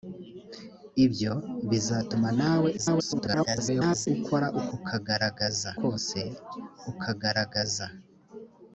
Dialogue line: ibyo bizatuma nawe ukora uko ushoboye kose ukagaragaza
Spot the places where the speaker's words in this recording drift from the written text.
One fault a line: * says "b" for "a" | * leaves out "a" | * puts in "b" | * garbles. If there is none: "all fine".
* garbles
* says "ukagaragaza" for "ushoboye"